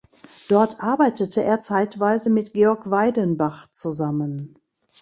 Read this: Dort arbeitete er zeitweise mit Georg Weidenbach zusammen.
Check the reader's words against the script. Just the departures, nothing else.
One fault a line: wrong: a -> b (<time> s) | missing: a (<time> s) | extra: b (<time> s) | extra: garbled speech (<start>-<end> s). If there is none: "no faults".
no faults